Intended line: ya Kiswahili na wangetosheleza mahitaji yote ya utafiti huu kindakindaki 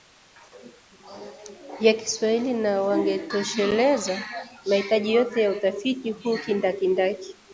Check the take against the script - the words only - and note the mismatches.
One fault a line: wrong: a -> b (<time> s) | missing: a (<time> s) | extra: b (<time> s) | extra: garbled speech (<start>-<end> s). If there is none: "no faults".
no faults